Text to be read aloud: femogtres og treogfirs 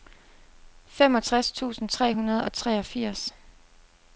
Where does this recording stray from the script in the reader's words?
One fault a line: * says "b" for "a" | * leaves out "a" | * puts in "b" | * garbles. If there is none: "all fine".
* puts in "tusind tre hundrede"